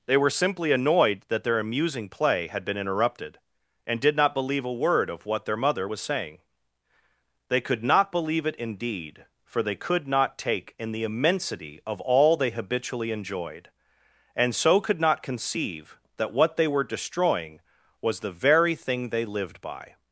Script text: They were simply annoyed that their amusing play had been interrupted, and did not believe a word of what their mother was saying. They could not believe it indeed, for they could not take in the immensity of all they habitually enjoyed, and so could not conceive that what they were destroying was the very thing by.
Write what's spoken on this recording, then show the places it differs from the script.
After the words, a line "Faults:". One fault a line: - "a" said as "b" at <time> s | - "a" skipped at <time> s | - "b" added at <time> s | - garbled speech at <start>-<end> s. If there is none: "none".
They were simply annoyed that their amusing play had been interrupted, and did not believe a word of what their mother was saying. They could not believe it indeed, for they could not take in the immensity of all they habitually enjoyed, and so could not conceive that what they were destroying was the very thing they lived by.
Faults:
- "they lived" added at 19.1 s